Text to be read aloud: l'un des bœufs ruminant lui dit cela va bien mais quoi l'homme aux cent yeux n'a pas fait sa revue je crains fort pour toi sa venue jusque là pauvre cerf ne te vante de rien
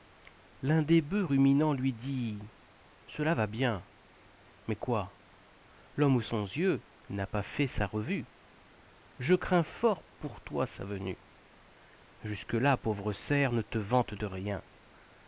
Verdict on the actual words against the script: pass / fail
pass